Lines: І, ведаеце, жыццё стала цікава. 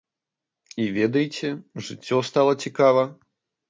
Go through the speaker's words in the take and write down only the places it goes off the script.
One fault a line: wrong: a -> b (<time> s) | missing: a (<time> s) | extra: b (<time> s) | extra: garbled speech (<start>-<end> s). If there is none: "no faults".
no faults